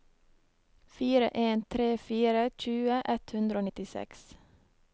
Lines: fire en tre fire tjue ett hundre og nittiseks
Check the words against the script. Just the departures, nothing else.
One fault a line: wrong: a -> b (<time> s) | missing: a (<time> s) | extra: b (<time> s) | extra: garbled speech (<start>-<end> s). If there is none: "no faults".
no faults